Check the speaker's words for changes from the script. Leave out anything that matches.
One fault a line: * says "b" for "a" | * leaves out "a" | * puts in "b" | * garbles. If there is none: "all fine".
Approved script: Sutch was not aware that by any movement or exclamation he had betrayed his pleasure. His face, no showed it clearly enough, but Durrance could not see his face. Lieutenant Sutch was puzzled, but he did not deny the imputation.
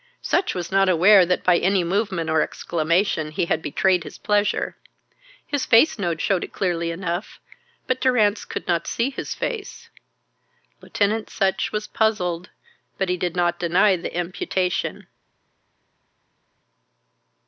all fine